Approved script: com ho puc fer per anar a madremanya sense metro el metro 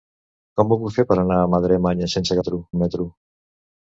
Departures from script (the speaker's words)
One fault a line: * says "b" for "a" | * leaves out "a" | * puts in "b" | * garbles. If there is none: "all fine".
all fine